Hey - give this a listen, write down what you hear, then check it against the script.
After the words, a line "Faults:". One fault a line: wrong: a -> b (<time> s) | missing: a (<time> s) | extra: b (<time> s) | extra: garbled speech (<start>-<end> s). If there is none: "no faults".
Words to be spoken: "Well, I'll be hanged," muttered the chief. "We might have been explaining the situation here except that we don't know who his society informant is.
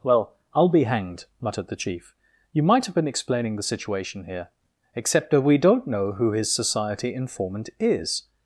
"Well, I'll be hanged," muttered the chief. "You might have been explaining the situation here except that we don't know who his society informant is.
Faults:
wrong: We -> You (2.5 s)